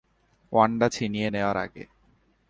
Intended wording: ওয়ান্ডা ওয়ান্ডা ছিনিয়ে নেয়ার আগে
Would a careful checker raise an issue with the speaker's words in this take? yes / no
yes